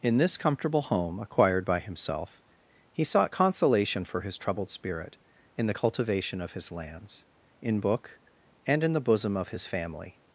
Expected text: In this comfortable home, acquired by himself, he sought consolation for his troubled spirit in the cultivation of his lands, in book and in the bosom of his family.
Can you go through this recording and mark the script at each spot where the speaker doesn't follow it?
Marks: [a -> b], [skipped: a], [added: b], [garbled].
In this comfortable home, acquired by himself, he sought consolation for his troubled spirit in the cultivation of his lands, in book and in the bosom of his family.